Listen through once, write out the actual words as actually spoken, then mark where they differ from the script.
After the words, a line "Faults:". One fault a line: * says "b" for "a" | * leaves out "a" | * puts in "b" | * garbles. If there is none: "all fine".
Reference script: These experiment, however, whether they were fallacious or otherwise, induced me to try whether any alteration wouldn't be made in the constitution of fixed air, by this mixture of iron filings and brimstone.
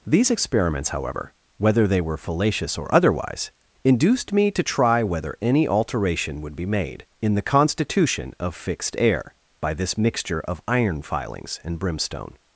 These experiments, however, whether they were fallacious or otherwise, induced me to try whether any alteration would be made in the constitution of fixed air, by this mixture of iron filings and brimstone.
Faults:
* says "experiments" for "experiment"
* says "would" for "wouldn't"